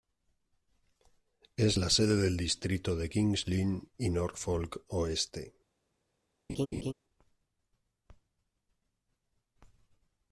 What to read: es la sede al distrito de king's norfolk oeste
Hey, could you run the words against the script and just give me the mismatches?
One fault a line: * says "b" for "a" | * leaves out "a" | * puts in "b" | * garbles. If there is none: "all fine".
* says "del" for "al"
* puts in "lynn y"